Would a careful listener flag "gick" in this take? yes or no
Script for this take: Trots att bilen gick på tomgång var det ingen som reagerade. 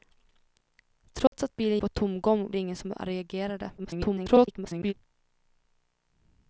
yes